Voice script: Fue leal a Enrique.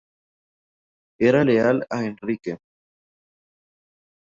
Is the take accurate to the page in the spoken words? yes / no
no